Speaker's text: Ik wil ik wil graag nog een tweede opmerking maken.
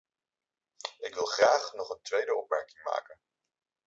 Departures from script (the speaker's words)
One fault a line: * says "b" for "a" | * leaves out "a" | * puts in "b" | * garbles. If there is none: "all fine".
* leaves out "ik wil"